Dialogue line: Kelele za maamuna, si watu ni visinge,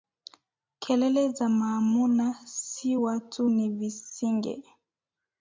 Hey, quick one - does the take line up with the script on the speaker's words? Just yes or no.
yes